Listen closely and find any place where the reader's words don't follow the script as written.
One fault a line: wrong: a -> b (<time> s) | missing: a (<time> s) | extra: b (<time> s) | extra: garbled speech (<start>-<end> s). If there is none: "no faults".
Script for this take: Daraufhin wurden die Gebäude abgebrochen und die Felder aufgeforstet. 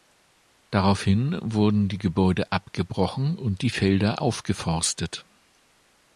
no faults